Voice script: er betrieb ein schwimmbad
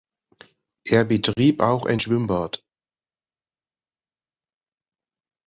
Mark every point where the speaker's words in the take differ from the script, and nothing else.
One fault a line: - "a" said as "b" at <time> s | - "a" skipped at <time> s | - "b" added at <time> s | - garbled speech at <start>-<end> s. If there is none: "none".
- "auch" added at 1.6 s